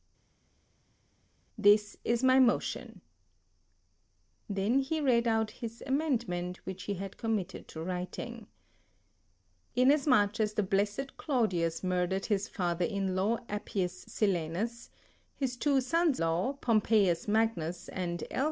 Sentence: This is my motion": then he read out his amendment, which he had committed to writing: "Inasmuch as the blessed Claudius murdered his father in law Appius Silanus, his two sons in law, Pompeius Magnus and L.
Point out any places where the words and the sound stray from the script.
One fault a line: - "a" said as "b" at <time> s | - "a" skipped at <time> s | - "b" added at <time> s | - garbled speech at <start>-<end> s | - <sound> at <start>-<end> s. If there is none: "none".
- "in" skipped at 16.2 s